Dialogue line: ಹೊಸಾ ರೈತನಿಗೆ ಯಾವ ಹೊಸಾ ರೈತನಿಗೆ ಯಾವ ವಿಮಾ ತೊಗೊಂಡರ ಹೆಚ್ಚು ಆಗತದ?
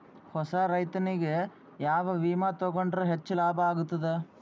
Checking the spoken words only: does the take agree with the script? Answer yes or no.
no